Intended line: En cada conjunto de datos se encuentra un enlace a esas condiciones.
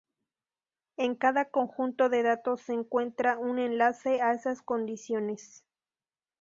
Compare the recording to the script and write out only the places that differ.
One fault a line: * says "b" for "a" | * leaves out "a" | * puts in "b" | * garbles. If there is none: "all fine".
all fine